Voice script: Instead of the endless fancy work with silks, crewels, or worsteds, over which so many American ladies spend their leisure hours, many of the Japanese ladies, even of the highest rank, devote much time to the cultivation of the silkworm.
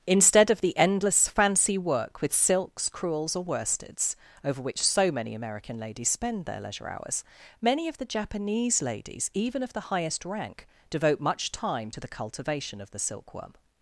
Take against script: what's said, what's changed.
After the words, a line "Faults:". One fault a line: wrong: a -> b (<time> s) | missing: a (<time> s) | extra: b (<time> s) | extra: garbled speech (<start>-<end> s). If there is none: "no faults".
Instead of the endless fancy work with silks, crewels, or worsteds, over which so many American ladies spend their leisure hours, many of the Japanese ladies, even of the highest rank, devote much time to the cultivation of the silkworm.
Faults:
no faults